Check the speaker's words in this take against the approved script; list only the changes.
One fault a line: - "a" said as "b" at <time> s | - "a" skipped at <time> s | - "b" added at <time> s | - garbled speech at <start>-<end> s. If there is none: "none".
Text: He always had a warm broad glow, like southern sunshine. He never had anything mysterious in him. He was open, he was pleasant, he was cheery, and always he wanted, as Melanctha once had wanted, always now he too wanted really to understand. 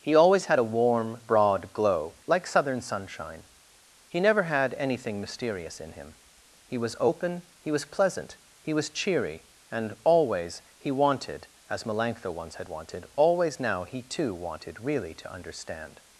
none